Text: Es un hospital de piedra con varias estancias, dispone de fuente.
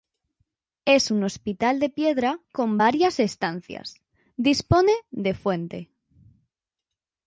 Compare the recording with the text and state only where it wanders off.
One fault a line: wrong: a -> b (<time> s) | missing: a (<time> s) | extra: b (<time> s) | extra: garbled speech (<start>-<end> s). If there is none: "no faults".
no faults